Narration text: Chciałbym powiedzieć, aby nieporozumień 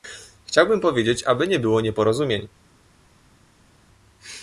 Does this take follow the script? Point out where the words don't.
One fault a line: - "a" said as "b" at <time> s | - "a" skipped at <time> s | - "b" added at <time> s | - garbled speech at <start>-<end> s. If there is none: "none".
- "nie było" added at 1.5 s